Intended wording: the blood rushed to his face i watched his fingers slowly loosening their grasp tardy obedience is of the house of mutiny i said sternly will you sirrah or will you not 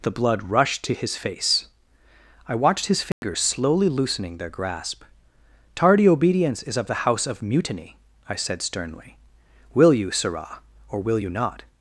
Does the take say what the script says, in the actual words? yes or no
yes